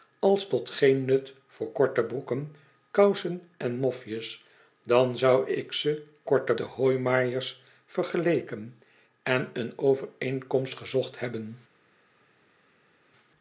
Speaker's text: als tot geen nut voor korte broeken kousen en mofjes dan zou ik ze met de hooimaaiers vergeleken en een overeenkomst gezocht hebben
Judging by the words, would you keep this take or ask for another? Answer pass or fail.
fail